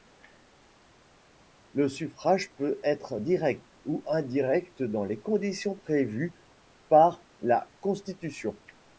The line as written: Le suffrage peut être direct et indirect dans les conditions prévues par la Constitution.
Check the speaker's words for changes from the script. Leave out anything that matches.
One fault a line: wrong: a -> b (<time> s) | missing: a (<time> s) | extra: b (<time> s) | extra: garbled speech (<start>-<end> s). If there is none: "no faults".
wrong: et -> ou (3.8 s)